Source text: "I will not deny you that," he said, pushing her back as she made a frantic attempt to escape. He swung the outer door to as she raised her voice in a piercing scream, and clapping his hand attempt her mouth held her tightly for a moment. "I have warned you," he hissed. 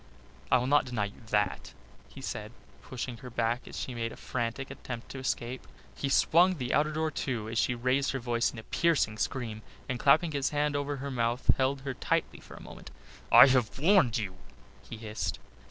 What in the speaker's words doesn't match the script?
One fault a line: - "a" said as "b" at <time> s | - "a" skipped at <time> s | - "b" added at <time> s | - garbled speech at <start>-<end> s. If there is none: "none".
- "attempt" said as "over" at 10.7 s